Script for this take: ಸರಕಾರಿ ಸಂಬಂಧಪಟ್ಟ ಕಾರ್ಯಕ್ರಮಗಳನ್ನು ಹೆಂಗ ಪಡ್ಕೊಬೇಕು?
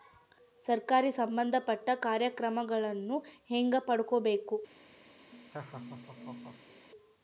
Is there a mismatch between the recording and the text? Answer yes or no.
no